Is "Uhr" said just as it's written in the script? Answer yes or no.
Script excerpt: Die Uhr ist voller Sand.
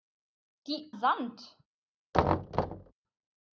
no